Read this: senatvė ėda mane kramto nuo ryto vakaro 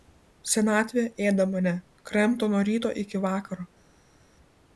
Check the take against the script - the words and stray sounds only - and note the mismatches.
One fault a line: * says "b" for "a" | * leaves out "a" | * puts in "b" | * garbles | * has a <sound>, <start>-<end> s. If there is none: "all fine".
* puts in "iki"